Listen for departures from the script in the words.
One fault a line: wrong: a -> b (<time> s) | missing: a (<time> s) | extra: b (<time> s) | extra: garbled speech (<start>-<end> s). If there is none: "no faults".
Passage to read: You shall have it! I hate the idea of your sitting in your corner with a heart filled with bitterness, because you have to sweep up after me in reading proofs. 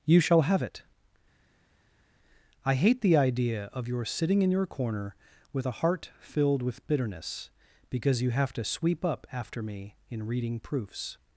no faults